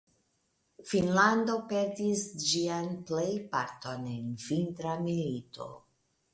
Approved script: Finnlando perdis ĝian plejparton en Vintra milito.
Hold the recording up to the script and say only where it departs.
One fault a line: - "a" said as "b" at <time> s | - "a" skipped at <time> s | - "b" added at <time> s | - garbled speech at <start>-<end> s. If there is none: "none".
none